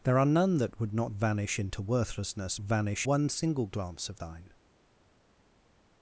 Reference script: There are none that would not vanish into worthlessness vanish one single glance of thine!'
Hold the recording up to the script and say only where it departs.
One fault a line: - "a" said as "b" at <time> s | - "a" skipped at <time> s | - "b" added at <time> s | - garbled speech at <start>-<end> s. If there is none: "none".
none